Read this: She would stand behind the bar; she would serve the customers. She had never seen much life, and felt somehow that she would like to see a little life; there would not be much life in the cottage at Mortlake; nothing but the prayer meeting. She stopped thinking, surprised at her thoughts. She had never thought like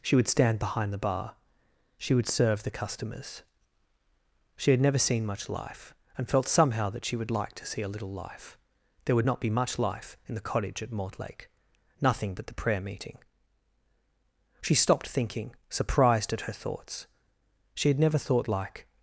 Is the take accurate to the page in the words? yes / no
yes